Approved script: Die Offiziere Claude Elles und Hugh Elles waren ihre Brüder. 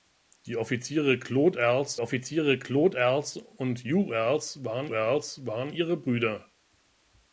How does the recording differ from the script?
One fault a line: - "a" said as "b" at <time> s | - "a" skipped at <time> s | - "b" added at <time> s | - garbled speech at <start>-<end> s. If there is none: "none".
- "Offiziere Claude Elles" added at 2.0 s
- "Elles waren" added at 4.9 s